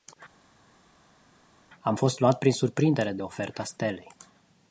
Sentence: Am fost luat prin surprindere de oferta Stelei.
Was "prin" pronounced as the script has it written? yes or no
yes